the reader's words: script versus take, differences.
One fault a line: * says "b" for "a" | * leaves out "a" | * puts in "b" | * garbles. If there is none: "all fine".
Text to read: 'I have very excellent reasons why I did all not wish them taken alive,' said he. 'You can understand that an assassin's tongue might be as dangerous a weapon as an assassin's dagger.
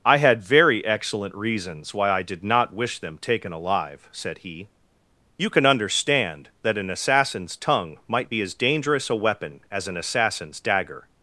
* says "had" for "have"
* leaves out "all"